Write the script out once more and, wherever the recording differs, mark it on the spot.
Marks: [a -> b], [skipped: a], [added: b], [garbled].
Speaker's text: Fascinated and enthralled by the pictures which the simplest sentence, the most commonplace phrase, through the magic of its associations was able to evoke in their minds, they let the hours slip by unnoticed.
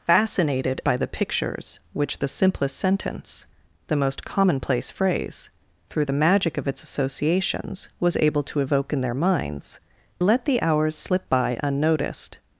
Fascinated [skipped: and enthralled] by the pictures which the simplest sentence, the most commonplace phrase, through the magic of its associations was able to evoke in their minds, [skipped: they] let the hours slip by unnoticed.